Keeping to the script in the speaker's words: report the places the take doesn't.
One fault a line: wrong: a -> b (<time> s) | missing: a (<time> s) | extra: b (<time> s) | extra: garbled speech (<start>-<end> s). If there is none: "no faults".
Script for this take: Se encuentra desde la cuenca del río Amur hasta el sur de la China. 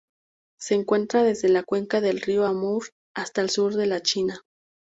no faults